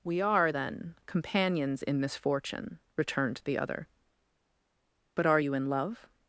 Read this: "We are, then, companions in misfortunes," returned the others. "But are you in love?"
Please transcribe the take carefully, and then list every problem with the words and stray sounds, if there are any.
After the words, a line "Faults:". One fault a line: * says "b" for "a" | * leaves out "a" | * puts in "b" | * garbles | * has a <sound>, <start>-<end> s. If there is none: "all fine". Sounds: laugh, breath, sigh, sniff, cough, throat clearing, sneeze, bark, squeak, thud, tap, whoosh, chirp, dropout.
"We are, then, companions in misfortune," returned the other. "But are you in love?"
Faults:
* says "misfortune" for "misfortunes"
* says "other" for "others"